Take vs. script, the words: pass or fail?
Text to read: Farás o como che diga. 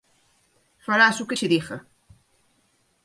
fail